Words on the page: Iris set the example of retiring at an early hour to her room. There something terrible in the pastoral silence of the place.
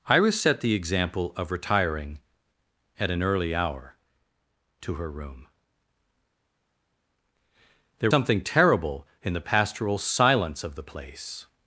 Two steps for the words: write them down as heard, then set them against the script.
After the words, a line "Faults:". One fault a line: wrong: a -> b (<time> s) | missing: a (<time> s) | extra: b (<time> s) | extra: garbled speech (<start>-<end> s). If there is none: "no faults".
Iris set the example of retiring at an early hour to her room. There something terrible in the pastoral silence of the place.
Faults:
no faults